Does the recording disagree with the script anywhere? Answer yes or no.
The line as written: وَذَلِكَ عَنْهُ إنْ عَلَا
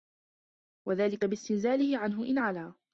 yes